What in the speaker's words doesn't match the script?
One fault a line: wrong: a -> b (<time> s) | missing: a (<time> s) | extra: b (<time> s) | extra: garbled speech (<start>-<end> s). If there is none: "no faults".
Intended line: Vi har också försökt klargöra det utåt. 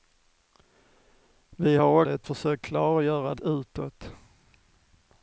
wrong: också -> det (2.0 s)
missing: det (3.3 s)